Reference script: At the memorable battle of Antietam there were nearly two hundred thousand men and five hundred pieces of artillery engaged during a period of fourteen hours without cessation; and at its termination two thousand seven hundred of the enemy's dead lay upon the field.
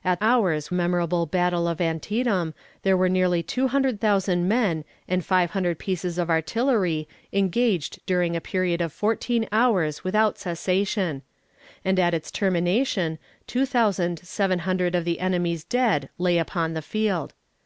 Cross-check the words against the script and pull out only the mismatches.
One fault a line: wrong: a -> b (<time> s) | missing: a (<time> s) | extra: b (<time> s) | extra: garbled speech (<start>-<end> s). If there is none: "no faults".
wrong: the -> hours (0.2 s)